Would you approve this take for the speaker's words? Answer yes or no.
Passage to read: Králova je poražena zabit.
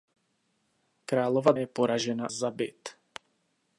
yes